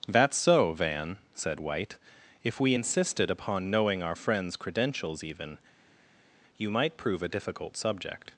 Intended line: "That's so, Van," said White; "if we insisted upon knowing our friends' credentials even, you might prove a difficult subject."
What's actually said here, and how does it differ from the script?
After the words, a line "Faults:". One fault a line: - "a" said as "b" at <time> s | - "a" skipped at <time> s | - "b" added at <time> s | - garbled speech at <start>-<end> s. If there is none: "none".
"That's so, Van," said White; "if we insisted upon knowing our friends' credentials even, you might prove a difficult subject."
Faults:
none